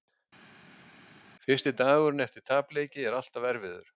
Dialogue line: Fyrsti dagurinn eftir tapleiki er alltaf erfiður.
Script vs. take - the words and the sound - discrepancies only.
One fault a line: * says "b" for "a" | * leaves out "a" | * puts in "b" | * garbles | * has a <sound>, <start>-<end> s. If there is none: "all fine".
all fine